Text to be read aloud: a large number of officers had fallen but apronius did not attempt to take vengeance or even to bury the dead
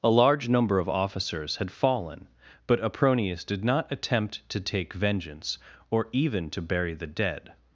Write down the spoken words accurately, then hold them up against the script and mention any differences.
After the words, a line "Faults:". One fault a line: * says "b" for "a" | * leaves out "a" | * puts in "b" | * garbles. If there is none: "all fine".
a large number of officers had fallen but apronius did not attempt to take vengeance or even to bury the dead
Faults:
all fine